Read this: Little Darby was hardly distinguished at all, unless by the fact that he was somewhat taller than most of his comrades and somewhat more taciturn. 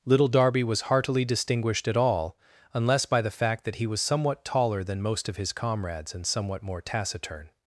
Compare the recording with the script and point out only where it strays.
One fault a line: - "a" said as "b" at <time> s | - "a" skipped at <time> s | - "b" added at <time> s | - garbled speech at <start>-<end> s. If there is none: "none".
- "hardly" said as "heartily" at 0.8 s